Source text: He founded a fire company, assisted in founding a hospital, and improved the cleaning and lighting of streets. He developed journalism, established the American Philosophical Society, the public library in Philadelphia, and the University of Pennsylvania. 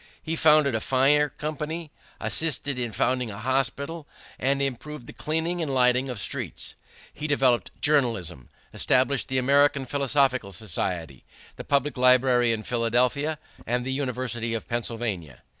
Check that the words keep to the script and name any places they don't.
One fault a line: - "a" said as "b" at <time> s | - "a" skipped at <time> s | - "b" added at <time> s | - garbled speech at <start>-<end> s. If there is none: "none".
none